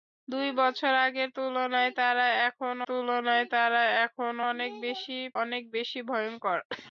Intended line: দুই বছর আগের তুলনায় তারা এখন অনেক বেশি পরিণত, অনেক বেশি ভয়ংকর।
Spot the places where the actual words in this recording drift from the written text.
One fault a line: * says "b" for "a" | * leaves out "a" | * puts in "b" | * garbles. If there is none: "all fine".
* puts in "তুলনায় তারা এখন"
* leaves out "পরিণত"